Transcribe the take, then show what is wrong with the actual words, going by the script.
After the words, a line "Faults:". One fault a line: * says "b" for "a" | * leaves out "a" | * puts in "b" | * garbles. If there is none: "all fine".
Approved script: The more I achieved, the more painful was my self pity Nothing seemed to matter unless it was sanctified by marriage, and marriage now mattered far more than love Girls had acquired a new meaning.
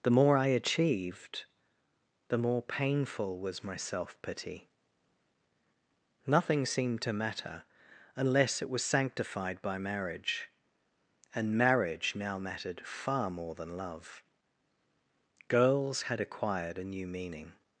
The more I achieved, the more painful was my self pity Nothing seemed to matter unless it was sanctified by marriage, and marriage now mattered far more than love Girls had acquired a new meaning.
Faults:
all fine